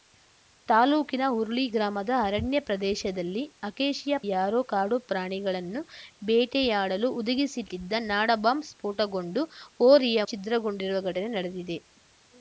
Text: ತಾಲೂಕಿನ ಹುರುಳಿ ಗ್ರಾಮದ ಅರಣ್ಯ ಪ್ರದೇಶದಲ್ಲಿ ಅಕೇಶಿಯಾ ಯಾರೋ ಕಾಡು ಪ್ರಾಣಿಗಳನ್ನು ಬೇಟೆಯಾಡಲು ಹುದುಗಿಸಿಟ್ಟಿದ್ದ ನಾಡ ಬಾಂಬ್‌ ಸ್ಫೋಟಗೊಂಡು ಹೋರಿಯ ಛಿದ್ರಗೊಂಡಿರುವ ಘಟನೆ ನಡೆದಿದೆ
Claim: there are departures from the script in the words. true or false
false